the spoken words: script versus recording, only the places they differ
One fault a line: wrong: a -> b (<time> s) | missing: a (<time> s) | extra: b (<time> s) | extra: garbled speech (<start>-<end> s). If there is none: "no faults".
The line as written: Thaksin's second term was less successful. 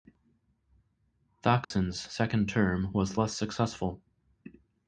no faults